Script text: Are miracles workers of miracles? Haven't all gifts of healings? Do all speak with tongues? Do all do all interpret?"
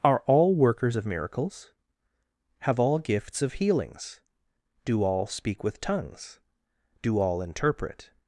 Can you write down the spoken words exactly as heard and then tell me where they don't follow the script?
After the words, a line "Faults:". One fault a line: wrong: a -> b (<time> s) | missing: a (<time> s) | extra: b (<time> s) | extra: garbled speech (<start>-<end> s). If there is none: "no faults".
Are all workers of miracles? Have all gifts of healings? Do all speak with tongues? Do all interpret?"
Faults:
wrong: miracles -> all (0.2 s)
wrong: Haven't -> Have (2.6 s)
missing: do all (7.4 s)